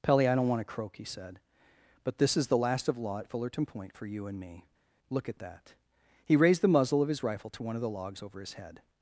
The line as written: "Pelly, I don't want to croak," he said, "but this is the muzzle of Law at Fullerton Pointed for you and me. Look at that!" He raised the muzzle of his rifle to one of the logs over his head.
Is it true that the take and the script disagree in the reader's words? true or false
true